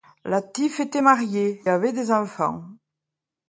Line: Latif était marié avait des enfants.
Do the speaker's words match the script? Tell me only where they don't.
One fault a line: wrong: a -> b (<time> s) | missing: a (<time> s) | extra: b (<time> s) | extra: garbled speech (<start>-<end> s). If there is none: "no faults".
no faults